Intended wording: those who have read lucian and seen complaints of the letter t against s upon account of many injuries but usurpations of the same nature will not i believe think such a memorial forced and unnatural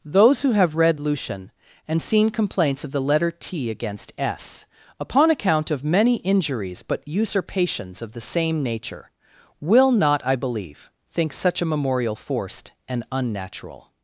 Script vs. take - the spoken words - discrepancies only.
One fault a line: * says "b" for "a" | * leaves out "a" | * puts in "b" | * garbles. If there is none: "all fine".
all fine